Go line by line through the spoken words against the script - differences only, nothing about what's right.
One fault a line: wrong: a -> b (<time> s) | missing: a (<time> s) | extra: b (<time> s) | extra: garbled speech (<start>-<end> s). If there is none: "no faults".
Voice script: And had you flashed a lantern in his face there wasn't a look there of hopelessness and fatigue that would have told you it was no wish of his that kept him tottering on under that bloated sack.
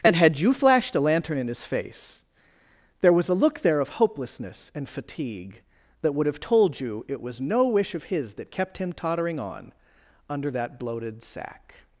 wrong: wasn't -> was (3.1 s)